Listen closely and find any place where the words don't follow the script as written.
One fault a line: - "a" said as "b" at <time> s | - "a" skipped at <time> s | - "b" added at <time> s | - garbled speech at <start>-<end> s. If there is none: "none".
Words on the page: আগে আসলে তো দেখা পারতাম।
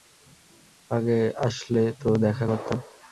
none